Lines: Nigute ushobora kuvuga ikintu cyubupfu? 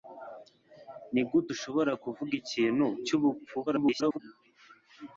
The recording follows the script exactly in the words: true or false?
false